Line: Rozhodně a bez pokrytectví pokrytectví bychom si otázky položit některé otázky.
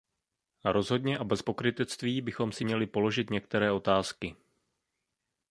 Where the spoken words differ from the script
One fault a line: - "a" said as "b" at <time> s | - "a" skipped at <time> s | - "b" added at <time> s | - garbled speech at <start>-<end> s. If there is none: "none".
- "pokrytectví" skipped at 2.2 s
- "otázky" said as "měli" at 2.6 s